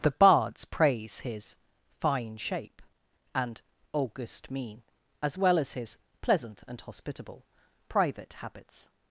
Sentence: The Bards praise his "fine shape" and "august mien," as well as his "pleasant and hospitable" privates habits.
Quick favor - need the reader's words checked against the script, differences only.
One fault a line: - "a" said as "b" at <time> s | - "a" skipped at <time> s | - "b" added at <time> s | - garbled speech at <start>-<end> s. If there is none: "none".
- "privates" said as "private" at 7.9 s